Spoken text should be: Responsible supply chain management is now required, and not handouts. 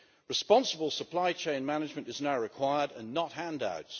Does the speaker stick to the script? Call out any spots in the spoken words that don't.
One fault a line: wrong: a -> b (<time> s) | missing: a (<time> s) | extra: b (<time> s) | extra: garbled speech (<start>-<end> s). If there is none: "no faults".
no faults